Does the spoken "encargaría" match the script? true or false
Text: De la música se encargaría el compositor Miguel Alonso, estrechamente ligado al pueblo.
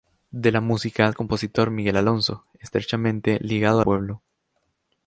false